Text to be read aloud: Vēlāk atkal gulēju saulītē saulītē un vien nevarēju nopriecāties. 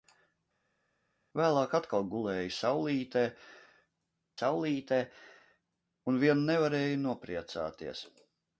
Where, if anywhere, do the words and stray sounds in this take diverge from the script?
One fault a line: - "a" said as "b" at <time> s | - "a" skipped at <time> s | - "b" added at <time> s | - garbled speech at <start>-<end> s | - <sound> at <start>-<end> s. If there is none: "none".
none